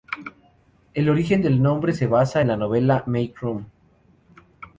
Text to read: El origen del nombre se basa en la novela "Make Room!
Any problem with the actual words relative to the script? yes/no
no